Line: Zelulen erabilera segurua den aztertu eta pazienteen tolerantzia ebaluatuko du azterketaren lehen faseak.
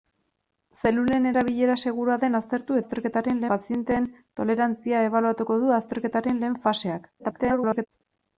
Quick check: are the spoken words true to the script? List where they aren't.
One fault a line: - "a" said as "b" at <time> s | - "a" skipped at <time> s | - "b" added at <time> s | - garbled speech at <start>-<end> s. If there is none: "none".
- "eta" said as "azterketaren" at 2.8 s
- garbled speech at 7.2-7.9 s